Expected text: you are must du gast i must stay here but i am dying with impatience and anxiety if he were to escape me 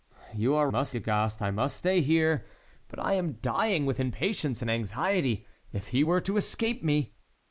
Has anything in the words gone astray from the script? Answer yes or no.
no